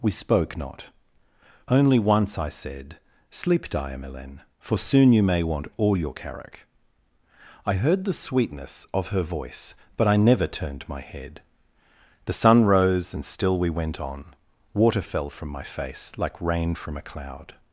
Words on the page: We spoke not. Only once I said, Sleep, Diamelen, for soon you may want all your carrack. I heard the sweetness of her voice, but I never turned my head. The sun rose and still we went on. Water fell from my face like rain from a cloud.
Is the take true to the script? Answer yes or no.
yes